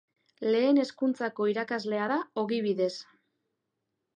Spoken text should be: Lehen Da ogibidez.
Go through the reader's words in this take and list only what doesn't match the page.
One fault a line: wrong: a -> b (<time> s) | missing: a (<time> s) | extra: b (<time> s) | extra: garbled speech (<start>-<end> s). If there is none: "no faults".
extra: Hezkuntzako irakaslea (0.8 s)